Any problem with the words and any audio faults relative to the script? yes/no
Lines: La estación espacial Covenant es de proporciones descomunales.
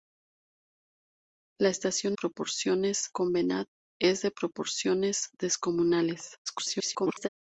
yes